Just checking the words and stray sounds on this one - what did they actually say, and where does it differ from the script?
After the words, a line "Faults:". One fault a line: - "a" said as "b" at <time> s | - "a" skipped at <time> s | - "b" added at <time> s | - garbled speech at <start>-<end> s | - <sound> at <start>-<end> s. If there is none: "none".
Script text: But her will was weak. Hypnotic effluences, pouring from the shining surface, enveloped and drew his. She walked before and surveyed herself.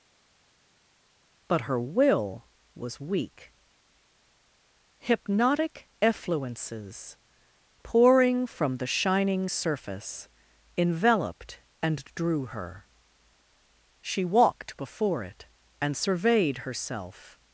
But her will was weak. Hypnotic effluences, pouring from the shining surface, enveloped and drew her. She walked before it and surveyed herself.
Faults:
- "his" said as "her" at 12.5 s
- "it" added at 15.2 s